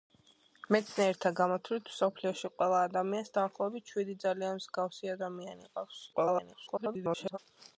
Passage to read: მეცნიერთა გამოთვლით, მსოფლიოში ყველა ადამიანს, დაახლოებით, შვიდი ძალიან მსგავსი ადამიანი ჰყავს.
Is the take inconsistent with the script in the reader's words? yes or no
yes